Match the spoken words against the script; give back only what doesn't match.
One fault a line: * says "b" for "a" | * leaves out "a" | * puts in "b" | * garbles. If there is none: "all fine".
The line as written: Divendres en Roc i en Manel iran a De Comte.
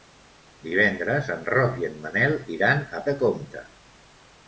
all fine